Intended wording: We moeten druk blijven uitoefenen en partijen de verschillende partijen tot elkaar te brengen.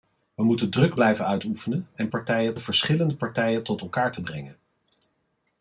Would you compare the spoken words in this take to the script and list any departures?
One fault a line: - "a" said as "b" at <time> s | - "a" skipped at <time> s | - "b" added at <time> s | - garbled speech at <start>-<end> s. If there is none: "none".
none